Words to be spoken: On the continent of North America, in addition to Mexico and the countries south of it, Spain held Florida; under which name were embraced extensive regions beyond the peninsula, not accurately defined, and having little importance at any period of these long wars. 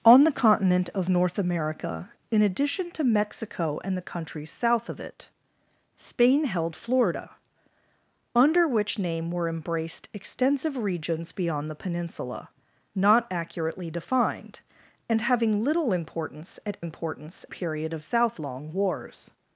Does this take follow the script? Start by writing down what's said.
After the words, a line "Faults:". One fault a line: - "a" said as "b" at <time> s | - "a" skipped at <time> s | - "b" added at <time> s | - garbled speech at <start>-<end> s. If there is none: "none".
On the continent of North America, in addition to Mexico and the countries south of it, Spain held Florida; under which name were embraced extensive regions beyond the peninsula, not accurately defined, and having little importance at importance period of south long wars.
Faults:
- "any" said as "importance" at 16.8 s
- "these" said as "south" at 18.0 s